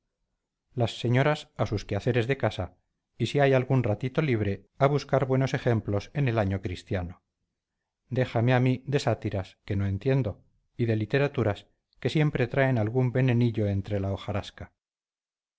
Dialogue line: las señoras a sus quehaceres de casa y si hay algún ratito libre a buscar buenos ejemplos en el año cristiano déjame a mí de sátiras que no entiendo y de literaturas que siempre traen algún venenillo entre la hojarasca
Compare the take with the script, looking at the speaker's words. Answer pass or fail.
pass